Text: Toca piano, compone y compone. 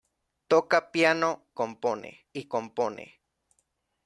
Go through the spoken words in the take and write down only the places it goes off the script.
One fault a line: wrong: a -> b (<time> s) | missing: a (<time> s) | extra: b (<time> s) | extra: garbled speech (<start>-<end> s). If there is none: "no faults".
no faults